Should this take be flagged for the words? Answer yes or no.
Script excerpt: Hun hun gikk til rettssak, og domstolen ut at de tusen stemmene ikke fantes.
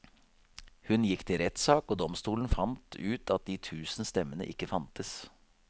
yes